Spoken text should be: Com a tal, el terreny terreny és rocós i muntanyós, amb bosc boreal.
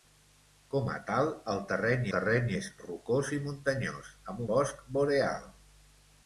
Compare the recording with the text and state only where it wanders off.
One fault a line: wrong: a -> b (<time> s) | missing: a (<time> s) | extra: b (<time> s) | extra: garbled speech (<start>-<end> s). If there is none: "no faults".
no faults